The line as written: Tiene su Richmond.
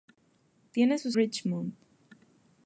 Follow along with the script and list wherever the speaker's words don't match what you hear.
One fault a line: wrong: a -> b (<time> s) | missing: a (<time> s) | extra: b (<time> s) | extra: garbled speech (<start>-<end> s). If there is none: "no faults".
no faults